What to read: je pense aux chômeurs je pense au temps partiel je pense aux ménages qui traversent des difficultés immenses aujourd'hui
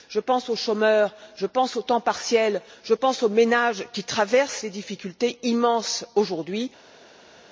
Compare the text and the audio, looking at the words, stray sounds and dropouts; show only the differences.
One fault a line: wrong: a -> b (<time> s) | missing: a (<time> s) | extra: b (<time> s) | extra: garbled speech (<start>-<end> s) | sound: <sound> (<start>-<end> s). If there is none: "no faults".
no faults